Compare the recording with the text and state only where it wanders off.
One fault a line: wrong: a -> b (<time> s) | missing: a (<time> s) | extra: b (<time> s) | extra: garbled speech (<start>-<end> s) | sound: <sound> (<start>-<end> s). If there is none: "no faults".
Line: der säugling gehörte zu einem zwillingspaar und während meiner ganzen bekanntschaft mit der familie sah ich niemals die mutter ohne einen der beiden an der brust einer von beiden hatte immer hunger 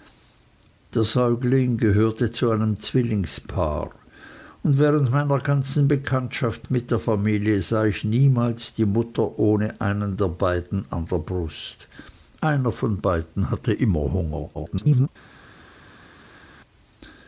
extra: garbled speech (14.5-15.1 s)